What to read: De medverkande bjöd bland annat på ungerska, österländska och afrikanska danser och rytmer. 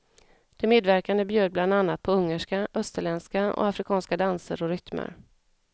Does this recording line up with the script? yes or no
yes